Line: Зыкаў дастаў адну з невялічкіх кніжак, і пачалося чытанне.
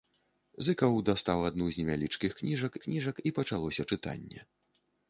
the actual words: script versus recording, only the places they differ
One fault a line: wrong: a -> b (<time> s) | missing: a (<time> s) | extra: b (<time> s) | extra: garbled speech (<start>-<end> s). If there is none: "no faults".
extra: кніжак (2.9 s)